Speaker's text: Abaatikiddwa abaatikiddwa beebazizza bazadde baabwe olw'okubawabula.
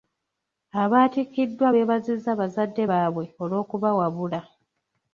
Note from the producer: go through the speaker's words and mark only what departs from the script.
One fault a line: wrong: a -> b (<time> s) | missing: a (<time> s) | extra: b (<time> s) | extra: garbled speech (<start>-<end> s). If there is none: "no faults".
missing: abaatikiddwa (1.7 s)